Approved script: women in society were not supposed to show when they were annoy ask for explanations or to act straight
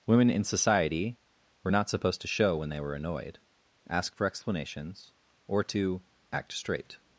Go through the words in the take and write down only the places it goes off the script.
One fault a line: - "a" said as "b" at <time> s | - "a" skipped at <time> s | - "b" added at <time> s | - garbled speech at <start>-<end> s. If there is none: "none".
- "annoy" said as "annoyed" at 2.9 s